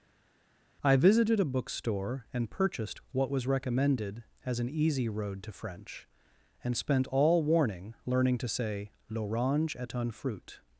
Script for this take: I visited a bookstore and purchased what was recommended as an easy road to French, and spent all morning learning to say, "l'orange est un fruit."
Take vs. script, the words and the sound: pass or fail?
fail